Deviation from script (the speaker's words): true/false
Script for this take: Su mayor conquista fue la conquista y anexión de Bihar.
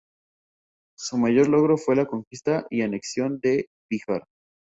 true